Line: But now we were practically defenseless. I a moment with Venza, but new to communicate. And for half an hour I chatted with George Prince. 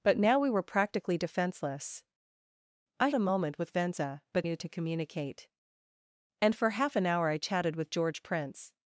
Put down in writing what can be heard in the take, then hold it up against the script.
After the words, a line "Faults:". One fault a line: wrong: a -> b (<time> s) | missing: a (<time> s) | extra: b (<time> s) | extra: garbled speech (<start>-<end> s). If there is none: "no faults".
But now we were practically defenseless. I a moment with Venza, but new to communicate. And for half an hour I chatted with George Prince.
Faults:
no faults